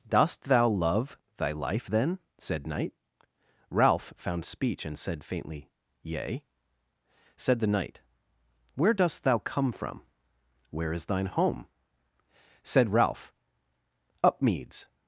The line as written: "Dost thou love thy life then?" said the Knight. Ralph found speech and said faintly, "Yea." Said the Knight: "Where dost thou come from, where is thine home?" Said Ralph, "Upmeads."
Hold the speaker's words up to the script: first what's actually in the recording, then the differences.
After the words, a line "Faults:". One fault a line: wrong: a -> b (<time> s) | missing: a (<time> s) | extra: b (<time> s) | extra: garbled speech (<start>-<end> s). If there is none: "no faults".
"Dost thou love thy life then?" said Knight. Ralph found speech and said faintly, "Yea." Said the Knight: "Where dost thou come from, where is thine home?" Said Ralph, "Upmeads."
Faults:
missing: the (2.7 s)